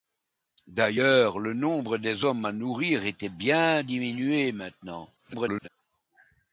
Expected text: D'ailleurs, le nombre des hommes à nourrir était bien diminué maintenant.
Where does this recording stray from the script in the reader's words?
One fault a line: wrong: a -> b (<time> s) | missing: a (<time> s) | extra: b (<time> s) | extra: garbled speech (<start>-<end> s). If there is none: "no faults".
extra: garbled speech (5.2-5.7 s)